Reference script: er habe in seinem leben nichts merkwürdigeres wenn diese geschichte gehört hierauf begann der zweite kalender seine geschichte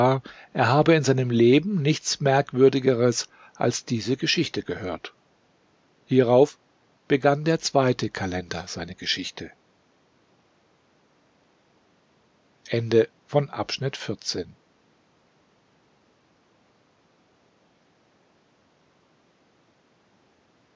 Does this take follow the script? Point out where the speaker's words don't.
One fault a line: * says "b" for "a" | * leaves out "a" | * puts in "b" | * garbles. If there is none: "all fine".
* says "als" for "wenn"